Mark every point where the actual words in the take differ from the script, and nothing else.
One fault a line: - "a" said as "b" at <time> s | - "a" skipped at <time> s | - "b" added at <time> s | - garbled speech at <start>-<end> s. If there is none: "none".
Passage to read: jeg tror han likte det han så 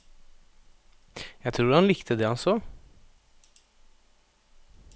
none